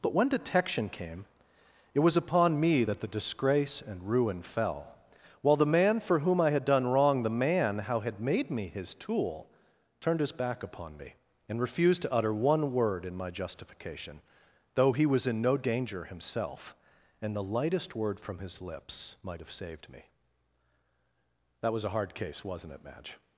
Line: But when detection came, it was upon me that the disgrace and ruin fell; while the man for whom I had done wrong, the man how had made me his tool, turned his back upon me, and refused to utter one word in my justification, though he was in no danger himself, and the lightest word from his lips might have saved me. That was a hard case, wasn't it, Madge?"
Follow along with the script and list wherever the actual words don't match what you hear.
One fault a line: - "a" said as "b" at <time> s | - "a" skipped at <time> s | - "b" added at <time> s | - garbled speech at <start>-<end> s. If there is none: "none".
none